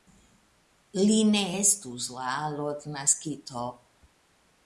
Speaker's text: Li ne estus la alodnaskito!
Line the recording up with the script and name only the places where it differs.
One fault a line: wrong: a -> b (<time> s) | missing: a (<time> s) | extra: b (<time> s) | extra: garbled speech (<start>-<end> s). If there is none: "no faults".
no faults